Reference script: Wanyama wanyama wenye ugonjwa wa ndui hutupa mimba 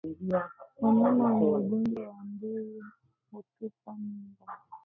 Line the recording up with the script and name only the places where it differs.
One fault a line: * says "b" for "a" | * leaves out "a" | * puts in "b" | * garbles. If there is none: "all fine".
* leaves out "wanyama"